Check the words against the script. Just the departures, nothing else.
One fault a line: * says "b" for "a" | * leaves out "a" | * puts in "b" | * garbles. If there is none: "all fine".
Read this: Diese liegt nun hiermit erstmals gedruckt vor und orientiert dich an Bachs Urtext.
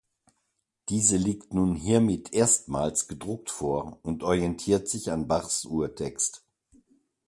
* says "sich" for "dich"